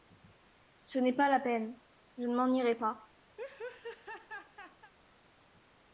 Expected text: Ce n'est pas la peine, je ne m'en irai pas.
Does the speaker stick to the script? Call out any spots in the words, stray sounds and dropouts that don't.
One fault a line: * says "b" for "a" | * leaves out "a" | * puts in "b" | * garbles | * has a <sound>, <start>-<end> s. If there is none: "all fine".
* has a laugh, 3.4-4.9 s